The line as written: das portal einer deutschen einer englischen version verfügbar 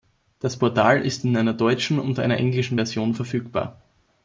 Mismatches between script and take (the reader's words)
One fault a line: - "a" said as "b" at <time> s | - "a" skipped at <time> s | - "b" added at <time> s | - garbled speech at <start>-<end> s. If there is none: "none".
- "ist in" added at 1.0 s
- "und" added at 2.0 s